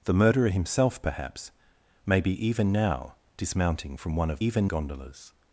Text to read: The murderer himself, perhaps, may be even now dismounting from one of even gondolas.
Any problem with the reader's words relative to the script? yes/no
no